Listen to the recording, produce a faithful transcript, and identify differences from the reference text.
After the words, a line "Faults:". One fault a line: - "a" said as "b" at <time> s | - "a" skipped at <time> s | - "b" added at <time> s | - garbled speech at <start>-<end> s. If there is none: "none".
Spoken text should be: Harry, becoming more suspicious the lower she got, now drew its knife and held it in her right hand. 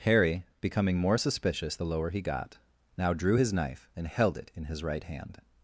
Harry, becoming more suspicious the lower he got, now drew his knife and held it in his right hand.
Faults:
- "she" said as "he" at 2.1 s
- "its" said as "his" at 3.4 s
- "her" said as "his" at 4.6 s